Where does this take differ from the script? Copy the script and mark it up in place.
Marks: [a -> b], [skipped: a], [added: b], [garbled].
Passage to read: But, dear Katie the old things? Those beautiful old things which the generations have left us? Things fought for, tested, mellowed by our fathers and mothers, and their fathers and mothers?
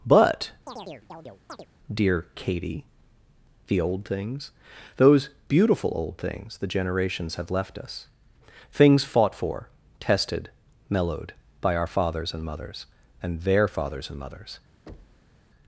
But, dear Katie the old things? Those beautiful old things [skipped: which] the generations have left us? Things fought for, tested, mellowed by our fathers and mothers, and their fathers and mothers?